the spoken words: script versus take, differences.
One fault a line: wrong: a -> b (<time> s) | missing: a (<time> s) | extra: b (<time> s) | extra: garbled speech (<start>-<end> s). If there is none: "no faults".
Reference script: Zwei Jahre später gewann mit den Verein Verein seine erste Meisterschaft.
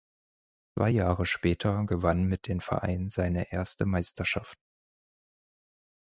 missing: Verein (3.1 s)